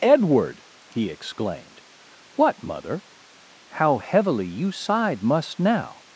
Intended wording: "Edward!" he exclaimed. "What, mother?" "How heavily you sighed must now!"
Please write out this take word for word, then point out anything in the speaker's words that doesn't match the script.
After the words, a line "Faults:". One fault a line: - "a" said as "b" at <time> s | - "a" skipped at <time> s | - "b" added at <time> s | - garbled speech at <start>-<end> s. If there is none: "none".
"Edward!" he exclaimed. "What, mother?" "How heavily you sighed must now!"
Faults:
none